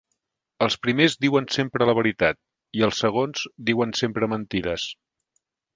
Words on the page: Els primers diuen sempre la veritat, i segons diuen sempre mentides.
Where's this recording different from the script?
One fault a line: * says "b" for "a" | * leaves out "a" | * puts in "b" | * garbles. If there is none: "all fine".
* puts in "els"